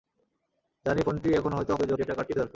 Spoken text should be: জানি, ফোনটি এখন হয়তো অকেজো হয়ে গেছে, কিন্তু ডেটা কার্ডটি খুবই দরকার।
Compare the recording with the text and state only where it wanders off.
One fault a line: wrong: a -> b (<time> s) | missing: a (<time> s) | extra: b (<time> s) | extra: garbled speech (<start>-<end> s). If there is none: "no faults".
missing: হয়ে গেছে কিন্তু (1.9 s)
missing: খুবই (2.3 s)